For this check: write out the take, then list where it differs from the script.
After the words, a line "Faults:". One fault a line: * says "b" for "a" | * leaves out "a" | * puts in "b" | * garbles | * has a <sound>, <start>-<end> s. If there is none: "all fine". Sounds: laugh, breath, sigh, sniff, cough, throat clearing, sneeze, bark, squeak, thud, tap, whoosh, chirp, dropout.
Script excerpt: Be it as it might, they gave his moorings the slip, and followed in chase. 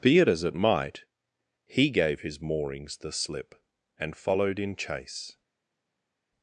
Be it as it might, he gave his moorings the slip, and followed in chase.
Faults:
* says "he" for "they"